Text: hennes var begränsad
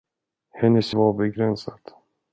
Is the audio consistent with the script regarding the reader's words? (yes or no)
yes